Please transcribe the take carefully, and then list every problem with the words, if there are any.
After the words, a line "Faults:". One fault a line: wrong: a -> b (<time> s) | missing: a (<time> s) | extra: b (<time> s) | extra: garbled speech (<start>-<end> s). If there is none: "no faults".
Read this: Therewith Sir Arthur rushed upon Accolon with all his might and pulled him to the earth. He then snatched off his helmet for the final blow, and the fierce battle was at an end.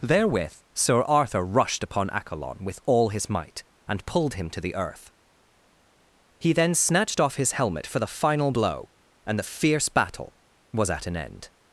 Therewith Sir Arthur rushed upon Accolon with all his might and pulled him to the earth. He then snatched off his helmet for the final blow, and the fierce battle was at an end.
Faults:
no faults